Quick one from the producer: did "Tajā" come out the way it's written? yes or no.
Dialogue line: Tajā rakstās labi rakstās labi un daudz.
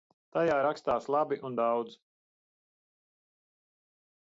yes